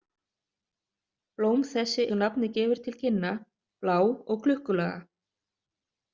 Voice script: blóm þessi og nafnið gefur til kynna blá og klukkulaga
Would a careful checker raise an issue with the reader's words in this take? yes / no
no